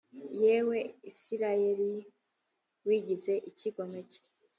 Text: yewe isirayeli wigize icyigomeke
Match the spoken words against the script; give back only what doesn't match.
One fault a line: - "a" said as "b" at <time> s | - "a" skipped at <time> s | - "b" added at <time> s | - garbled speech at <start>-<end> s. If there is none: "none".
none